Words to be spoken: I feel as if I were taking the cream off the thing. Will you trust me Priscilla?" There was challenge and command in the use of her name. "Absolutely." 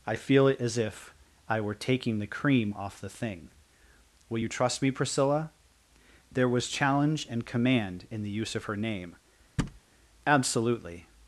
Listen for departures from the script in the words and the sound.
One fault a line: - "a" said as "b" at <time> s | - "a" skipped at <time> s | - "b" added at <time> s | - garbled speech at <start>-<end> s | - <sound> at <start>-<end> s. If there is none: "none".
- "it" added at 0.5 s
- thud at 9.6-9.8 s